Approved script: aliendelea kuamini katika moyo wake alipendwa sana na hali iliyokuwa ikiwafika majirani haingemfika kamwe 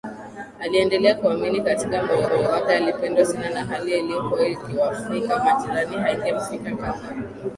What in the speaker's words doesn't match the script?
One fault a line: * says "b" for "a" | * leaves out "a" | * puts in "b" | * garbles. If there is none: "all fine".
* puts in "moyo"